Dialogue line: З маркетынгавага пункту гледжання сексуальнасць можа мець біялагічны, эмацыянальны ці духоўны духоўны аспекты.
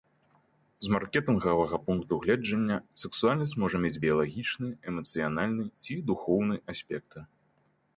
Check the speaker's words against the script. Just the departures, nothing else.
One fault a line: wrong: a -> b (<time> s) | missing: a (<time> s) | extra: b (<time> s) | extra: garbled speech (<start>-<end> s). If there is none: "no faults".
missing: духоўны (6.5 s)